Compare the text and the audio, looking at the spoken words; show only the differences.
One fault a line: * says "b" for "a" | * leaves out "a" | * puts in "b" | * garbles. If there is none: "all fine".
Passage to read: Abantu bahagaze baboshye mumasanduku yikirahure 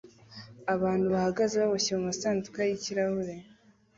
all fine